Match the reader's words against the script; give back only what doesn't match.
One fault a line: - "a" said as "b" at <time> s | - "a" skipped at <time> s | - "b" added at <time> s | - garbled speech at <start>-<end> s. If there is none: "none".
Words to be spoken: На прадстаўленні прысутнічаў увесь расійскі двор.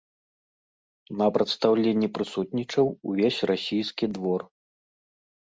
none